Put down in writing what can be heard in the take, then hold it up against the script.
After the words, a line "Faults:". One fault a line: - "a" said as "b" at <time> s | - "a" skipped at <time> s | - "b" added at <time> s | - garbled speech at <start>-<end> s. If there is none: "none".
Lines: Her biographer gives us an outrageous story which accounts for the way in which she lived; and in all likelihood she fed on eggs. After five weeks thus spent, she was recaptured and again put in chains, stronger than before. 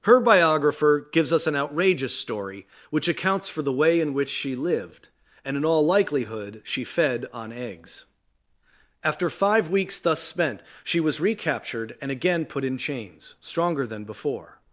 Her biographer gives us an outrageous story which accounts for the way in which she lived; and in all likelihood she fed on eggs. After five weeks thus spent, she was recaptured and again put in chains, stronger than before.
Faults:
none